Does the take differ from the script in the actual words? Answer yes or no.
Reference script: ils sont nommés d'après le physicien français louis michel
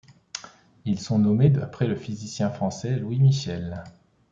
no